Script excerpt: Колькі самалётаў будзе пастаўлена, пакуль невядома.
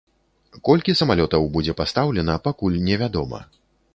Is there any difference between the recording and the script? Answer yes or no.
no